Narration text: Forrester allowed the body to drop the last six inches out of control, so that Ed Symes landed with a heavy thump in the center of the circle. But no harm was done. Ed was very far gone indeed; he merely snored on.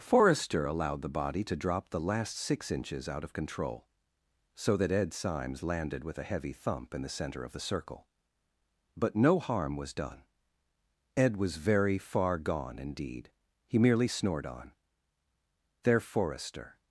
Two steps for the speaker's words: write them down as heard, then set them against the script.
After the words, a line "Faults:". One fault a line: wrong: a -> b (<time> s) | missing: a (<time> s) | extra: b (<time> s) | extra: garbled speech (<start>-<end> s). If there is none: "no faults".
Forrester allowed the body to drop the last six inches out of control, so that Ed Symes landed with a heavy thump in the center of the circle. But no harm was done. Ed was very far gone indeed; he merely snored on. "There," Forrester
Faults:
extra: There Forrester (15.8 s)